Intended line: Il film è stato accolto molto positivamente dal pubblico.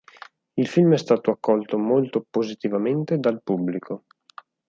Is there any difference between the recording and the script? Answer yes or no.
no